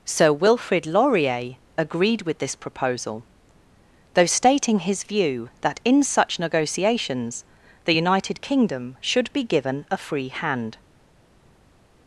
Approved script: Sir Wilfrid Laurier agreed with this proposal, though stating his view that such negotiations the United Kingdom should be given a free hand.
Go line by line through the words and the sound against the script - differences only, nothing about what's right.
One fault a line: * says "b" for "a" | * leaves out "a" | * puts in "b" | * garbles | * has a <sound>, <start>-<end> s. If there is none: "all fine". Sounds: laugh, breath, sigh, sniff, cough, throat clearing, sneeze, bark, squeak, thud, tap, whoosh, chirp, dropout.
* puts in "in"